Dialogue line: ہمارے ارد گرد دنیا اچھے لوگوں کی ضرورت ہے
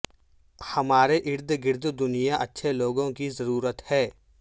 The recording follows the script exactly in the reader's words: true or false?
true